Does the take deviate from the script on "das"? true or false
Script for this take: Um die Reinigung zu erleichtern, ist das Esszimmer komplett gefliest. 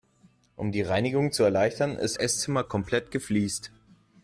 true